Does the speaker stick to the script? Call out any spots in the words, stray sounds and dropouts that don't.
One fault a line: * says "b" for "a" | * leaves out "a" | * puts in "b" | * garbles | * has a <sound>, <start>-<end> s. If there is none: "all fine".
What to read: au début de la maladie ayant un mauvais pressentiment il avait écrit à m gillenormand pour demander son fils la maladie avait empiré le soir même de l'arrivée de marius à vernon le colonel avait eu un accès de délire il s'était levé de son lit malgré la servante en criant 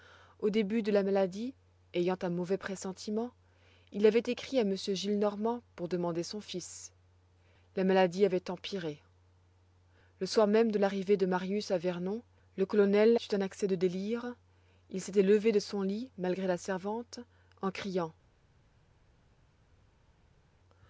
* leaves out "avait"